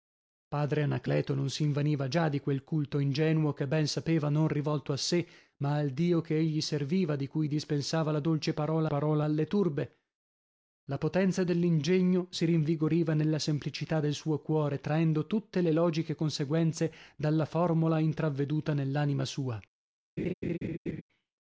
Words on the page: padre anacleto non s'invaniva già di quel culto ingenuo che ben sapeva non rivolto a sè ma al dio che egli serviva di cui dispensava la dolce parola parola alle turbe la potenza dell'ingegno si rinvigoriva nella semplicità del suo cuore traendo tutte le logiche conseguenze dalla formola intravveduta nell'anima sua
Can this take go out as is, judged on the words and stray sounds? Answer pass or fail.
fail